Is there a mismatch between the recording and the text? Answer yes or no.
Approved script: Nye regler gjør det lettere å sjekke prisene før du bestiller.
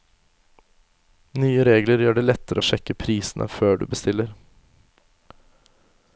no